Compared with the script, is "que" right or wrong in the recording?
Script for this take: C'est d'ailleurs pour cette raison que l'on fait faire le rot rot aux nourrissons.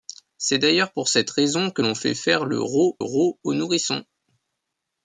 right